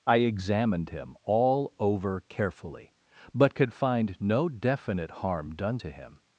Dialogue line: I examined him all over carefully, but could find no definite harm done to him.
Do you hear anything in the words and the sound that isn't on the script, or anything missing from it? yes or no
no